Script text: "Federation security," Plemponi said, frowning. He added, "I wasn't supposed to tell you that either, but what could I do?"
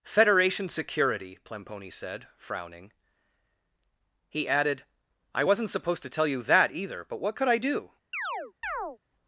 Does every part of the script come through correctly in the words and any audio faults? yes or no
no